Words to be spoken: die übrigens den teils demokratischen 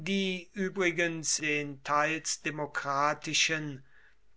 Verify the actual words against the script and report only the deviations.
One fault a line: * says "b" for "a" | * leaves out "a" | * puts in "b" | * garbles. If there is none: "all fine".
all fine